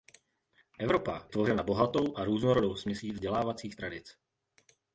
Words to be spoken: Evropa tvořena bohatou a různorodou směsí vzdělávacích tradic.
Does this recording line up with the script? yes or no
yes